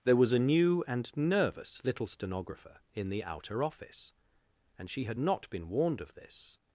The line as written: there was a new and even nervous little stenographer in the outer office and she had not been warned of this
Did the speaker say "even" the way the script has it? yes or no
no